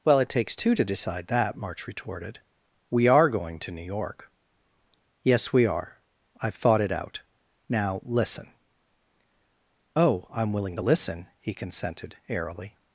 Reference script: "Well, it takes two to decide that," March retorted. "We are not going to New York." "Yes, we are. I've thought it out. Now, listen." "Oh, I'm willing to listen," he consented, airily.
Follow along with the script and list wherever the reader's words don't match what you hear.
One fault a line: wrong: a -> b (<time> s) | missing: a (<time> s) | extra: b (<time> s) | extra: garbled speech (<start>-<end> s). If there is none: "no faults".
missing: not (3.3 s)